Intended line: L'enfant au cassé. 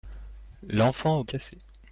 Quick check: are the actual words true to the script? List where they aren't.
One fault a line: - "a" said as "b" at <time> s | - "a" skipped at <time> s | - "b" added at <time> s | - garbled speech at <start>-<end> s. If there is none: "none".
none